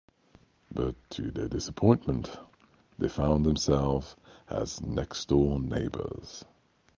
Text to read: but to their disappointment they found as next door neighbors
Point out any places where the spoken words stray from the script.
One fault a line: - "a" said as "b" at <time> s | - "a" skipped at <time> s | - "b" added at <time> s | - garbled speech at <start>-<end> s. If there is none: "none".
- "themselves" added at 3.5 s